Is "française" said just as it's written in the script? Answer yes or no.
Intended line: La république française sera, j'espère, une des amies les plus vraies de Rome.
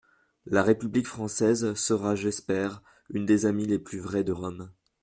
yes